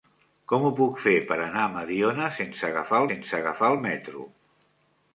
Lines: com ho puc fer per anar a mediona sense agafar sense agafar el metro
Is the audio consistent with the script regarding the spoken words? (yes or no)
yes